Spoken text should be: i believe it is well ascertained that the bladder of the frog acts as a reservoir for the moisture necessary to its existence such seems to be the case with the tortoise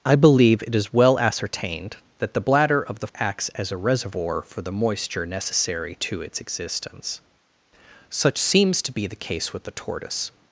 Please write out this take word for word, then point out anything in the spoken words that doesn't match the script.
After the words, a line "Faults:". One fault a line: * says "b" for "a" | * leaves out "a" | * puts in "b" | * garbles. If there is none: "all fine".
i believe it is well ascertained that the bladder of the acts as a reservoir for the moisture necessary to its existence such seems to be the case with the tortoise
Faults:
* leaves out "frog"